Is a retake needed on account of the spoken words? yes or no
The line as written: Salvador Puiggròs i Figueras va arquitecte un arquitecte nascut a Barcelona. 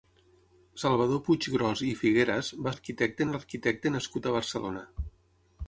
no